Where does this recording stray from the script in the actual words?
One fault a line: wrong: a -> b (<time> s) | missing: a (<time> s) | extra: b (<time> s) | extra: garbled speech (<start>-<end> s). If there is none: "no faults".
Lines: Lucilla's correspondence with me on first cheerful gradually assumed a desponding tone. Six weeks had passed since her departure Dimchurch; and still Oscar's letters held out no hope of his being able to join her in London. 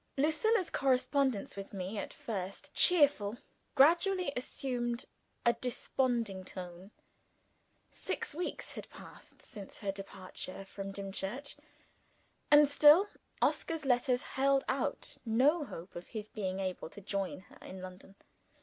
wrong: on -> at (2.0 s)
extra: from (10.6 s)